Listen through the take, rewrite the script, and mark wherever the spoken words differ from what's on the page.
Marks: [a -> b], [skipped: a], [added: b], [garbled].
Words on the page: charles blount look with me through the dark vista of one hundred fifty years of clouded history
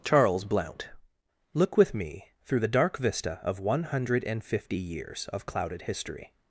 charles blount look with me through the dark vista of one hundred fifty years of clouded history